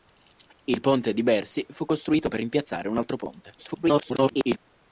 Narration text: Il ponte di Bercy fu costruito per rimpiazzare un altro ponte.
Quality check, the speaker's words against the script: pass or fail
fail